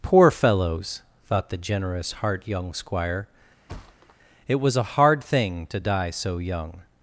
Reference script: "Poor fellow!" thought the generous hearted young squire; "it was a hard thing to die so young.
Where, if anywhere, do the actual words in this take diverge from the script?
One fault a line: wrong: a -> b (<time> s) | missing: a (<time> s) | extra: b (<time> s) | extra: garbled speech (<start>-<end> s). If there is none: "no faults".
wrong: fellow -> fellows (0.3 s)
wrong: hearted -> heart (2.1 s)